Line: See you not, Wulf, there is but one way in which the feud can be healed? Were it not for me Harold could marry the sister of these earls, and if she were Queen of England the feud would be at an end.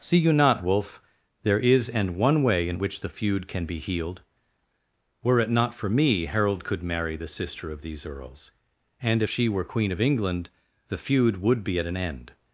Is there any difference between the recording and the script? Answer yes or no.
yes